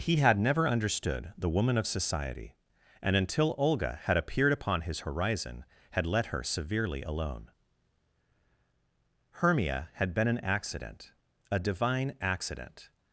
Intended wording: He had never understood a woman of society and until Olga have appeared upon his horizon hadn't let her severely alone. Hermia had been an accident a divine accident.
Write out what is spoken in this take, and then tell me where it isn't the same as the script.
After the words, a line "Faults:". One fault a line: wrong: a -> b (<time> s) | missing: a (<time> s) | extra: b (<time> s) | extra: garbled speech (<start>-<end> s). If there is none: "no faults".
He had never understood the woman of society and until Olga had appeared upon his horizon had let her severely alone. Hermia had been an accident a divine accident.
Faults:
wrong: a -> the (1.4 s)
wrong: have -> had (4.0 s)
wrong: hadn't -> had (5.9 s)